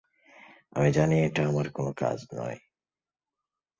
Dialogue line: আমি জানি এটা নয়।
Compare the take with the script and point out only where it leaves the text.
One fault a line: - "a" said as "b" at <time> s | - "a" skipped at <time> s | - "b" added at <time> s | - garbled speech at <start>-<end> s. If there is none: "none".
- "আমার কোনো কাজ" added at 1.5 s